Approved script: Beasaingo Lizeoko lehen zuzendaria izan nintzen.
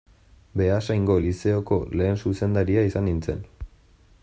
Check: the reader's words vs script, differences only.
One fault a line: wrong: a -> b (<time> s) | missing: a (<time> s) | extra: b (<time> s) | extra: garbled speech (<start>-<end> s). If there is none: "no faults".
no faults